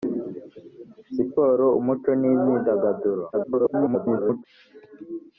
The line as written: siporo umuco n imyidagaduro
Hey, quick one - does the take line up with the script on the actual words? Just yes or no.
no